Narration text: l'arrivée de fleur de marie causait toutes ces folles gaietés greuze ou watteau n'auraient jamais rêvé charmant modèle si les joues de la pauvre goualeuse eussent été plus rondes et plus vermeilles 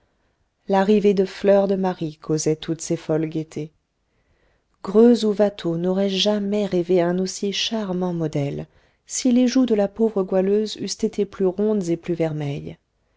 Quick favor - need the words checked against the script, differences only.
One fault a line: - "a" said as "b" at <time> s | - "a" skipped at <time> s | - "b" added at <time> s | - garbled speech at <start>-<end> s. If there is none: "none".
- "un aussi" added at 7.0 s